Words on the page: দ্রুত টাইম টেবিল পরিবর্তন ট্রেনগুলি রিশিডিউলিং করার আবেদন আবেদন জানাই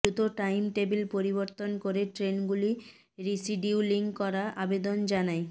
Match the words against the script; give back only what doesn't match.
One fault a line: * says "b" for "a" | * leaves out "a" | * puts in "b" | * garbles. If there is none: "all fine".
* puts in "করে"
* leaves out "আবেদন"